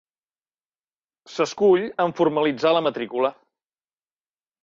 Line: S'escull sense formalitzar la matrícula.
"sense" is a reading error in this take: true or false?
true